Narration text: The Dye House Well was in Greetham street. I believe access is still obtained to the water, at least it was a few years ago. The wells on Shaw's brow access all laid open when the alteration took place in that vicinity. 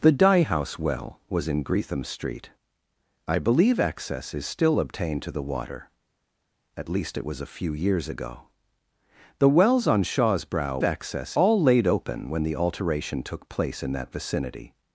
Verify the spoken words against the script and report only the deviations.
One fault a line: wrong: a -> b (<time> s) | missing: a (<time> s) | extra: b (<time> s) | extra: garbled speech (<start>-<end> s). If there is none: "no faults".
no faults